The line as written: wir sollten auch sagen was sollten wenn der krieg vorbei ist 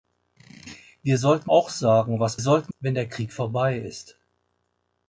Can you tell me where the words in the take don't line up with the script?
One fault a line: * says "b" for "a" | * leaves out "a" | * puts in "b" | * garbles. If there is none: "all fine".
all fine